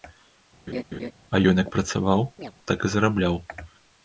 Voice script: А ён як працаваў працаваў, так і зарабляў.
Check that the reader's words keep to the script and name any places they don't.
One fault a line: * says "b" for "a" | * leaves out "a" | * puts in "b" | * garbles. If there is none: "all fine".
* leaves out "працаваў"